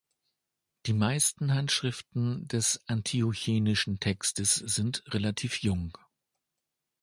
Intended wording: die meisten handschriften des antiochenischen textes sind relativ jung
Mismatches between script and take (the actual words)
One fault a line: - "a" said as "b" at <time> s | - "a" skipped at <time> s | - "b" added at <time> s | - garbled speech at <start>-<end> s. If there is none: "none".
none